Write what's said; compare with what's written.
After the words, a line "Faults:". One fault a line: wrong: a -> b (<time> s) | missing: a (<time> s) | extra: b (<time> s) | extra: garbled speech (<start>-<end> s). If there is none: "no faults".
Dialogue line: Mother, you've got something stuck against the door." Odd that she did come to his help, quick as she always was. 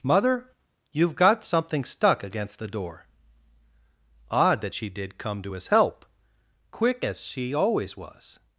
Mother, you've got something stuck against the door." Odd that she did come to his help, quick as she always was.
Faults:
no faults